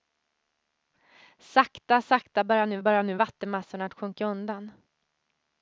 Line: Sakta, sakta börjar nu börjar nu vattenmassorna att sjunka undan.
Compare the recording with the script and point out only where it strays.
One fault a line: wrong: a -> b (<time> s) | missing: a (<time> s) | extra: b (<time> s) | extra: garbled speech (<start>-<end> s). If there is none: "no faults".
no faults